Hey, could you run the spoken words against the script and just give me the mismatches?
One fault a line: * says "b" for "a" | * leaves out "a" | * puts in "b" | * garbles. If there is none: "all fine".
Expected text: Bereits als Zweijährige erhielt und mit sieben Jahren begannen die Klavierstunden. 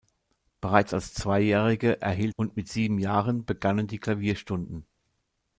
all fine